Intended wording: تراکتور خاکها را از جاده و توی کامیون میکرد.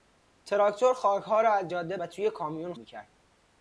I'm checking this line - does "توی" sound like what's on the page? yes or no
yes